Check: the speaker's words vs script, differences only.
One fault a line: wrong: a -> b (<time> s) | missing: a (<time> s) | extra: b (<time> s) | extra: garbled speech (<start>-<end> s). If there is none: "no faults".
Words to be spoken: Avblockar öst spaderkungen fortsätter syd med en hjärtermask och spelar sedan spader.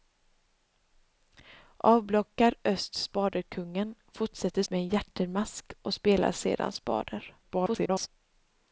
missing: syd (4.6 s)
extra: garbled speech (7.4-8.1 s)